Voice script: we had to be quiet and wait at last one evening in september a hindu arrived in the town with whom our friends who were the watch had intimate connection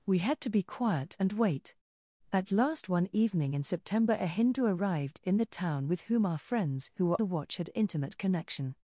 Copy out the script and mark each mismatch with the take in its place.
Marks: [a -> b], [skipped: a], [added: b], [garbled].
we had to be quiet and wait at last one evening in september a hindu arrived in the town with whom our friends who were the watch had intimate connection